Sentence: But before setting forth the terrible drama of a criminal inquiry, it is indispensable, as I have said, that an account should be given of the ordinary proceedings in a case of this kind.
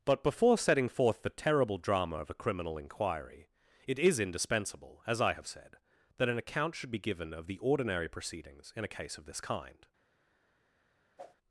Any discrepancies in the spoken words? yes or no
no